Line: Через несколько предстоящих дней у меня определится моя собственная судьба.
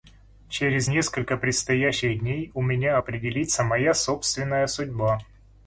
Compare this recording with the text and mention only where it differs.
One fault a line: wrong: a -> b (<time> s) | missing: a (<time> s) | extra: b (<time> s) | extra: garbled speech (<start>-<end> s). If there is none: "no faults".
no faults